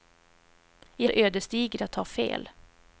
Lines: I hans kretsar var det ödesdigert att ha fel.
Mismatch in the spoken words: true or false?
true